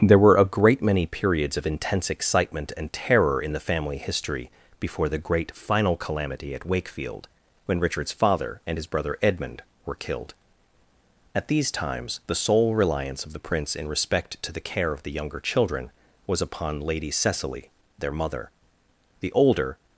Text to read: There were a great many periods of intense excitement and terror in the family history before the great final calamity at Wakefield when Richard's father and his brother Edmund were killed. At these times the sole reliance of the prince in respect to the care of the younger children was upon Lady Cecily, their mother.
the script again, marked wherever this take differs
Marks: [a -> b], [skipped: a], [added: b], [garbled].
There were a great many periods of intense excitement and terror in the family history before the great final calamity at Wakefield when Richard's father and his brother Edmund were killed. At these times the sole reliance of the prince in respect to the care of the younger children was upon Lady Cecily, their mother. [added: The older]